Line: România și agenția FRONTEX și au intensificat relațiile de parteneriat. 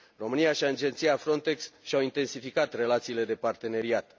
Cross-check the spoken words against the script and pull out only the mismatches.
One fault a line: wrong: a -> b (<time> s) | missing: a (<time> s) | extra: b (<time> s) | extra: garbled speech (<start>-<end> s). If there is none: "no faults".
no faults